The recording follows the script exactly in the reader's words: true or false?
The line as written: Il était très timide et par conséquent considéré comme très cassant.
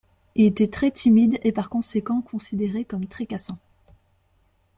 true